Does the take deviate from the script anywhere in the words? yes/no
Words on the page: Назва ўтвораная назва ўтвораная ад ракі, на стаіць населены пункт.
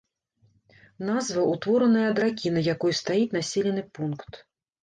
yes